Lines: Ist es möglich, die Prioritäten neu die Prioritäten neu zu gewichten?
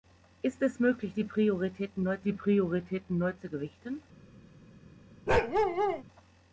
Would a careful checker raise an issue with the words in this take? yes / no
no